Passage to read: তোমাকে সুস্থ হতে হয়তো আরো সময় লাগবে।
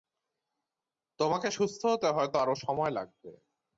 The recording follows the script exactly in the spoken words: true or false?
true